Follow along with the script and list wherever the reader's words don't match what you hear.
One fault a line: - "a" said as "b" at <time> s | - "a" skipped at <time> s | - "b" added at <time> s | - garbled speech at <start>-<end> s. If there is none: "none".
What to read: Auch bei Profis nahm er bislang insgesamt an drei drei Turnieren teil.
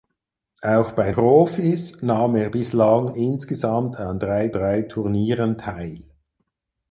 none